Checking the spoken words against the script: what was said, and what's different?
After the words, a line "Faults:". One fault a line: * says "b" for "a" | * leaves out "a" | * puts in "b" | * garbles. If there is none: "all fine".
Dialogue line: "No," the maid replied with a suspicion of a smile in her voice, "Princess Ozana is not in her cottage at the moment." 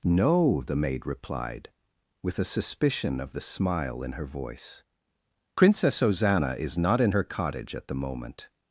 "No," the maid replied with a suspicion of the smile in her voice, "Princess Ozana is not in her cottage at the moment."
Faults:
* says "the" for "a"